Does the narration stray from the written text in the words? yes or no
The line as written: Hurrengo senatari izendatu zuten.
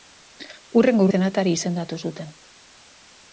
no